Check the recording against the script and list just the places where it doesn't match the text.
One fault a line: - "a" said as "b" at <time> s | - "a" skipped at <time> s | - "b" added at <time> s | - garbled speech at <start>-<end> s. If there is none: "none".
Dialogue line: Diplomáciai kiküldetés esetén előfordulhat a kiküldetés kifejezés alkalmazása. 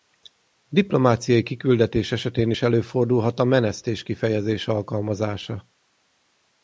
- "is" added at 2.5 s
- "kiküldetés" said as "menesztés" at 3.4 s